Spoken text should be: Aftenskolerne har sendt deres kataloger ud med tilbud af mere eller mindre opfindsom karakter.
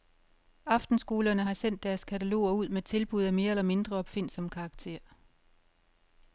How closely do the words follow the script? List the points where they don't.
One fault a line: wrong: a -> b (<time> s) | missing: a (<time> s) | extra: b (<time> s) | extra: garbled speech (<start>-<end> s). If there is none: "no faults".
no faults